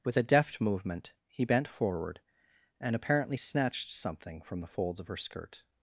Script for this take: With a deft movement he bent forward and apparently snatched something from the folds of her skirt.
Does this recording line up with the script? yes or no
yes